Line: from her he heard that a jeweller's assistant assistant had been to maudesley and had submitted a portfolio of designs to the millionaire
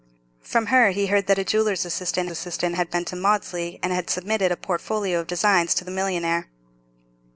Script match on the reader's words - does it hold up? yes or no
yes